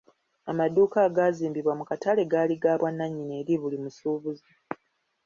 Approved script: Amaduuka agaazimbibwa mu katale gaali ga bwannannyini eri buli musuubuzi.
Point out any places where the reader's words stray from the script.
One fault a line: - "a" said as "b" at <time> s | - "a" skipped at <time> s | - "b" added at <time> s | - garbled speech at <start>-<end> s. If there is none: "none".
none